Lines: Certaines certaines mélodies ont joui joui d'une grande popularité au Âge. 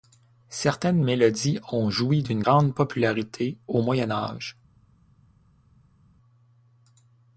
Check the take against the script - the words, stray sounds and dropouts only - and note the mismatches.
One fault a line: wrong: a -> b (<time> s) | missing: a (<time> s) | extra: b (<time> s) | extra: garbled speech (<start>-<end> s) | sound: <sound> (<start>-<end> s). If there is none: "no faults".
missing: certaines (1.0 s)
missing: joui (2.2 s)
extra: Moyen (3.8 s)